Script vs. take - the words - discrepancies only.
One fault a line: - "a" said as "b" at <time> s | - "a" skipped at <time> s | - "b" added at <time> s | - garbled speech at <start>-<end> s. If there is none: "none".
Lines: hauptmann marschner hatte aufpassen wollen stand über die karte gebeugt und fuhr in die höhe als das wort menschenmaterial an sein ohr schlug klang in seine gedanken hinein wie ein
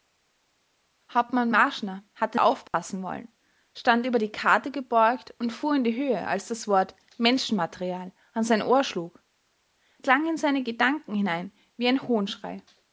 none